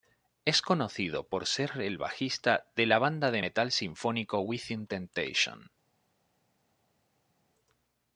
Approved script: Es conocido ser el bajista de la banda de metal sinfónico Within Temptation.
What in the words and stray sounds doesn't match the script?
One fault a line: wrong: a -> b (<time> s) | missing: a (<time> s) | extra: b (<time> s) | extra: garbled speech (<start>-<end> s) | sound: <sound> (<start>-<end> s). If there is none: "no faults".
extra: por (1.3 s)